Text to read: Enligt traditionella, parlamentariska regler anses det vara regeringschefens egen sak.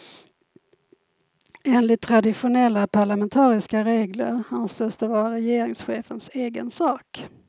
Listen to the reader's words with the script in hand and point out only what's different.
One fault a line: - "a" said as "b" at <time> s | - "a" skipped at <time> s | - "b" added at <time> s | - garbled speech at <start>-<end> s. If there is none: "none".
none